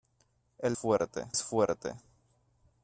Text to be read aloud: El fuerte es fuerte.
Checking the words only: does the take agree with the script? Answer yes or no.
yes